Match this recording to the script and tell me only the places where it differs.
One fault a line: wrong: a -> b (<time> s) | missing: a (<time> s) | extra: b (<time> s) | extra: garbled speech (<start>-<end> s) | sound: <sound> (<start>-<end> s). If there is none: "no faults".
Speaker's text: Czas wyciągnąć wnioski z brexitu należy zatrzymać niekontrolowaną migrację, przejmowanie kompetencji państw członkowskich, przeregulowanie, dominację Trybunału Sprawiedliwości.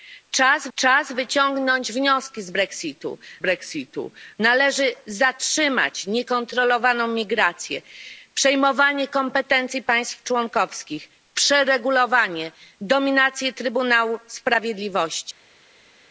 extra: czas (0.8 s)
extra: brexitu (3.4 s)